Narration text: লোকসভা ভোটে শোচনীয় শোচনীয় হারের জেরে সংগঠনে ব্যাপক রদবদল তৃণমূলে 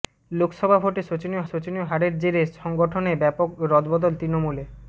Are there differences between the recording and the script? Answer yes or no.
no